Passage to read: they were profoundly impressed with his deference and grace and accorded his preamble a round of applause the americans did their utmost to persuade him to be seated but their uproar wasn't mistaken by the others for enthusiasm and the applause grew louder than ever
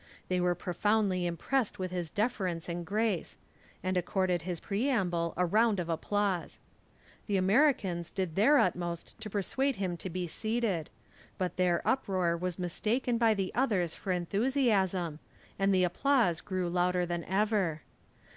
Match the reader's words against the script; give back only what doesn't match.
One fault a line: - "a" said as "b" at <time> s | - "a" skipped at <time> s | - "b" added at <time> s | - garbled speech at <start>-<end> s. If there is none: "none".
- "wasn't" said as "was" at 12.4 s